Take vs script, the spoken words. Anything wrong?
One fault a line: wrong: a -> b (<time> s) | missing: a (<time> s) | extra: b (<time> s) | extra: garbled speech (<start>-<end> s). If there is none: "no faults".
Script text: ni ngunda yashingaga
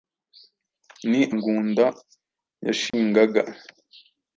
no faults